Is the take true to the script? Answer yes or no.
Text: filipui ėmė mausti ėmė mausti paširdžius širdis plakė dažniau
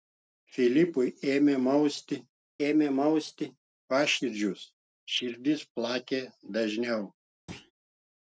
yes